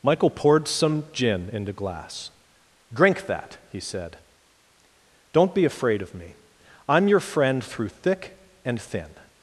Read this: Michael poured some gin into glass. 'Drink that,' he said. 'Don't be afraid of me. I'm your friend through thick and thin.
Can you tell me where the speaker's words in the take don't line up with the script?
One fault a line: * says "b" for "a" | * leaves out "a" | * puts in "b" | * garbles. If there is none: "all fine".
all fine